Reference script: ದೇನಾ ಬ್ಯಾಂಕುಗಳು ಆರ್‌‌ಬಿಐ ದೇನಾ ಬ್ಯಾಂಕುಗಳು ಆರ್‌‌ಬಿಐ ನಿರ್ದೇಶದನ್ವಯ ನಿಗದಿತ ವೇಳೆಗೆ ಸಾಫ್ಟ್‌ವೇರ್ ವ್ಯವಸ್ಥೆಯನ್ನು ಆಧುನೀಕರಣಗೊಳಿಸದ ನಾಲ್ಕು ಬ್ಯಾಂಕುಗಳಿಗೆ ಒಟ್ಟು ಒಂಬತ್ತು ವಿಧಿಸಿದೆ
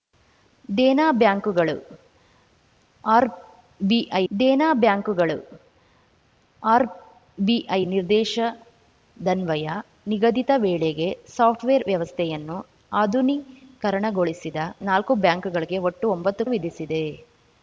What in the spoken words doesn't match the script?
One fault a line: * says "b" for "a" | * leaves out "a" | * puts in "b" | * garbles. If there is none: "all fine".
all fine